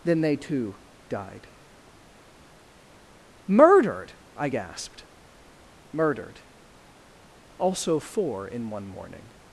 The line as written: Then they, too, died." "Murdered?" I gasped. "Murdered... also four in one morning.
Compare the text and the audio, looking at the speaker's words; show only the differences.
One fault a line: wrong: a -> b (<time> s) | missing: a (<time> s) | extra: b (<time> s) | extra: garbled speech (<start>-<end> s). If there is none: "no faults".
no faults